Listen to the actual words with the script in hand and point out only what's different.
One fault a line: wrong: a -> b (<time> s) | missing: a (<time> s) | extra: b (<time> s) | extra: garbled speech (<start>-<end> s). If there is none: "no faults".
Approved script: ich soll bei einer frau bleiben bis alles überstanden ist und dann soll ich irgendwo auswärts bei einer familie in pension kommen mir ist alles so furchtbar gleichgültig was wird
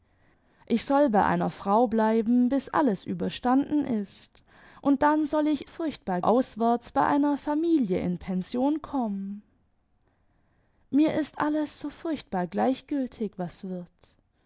wrong: irgendwo -> furchtbar (5.6 s)